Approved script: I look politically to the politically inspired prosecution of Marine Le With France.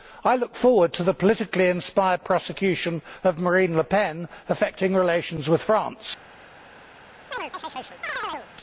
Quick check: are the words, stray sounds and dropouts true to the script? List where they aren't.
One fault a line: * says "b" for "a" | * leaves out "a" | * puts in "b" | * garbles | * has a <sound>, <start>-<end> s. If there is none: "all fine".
* says "forward" for "politically"
* puts in "Pen affecting relations"
* has a chirp, 7.3-8.5 s